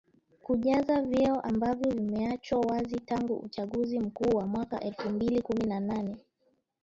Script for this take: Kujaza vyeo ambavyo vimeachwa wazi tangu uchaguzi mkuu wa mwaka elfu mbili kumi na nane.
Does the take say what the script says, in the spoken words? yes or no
yes